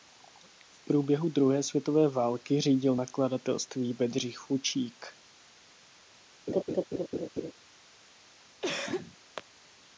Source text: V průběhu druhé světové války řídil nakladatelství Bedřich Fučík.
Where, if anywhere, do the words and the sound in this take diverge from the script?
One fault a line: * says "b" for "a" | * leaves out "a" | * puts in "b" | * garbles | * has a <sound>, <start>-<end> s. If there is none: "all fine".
* has a laugh, 6.5-7.5 s
* has a cough, 8.6-9.2 s